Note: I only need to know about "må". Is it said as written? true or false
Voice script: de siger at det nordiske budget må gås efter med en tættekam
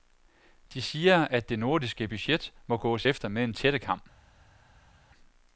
true